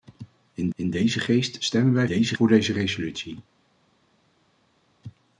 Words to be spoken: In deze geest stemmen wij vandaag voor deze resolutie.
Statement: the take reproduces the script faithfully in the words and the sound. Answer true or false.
false